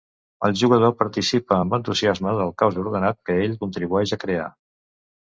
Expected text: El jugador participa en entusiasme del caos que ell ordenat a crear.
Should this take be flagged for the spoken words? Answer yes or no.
yes